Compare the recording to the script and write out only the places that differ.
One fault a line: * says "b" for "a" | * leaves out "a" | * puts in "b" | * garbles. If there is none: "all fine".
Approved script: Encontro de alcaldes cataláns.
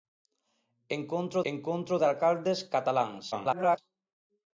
* puts in "encontro"
* garbles